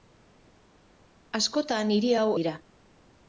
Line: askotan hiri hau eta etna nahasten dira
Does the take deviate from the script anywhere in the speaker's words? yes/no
yes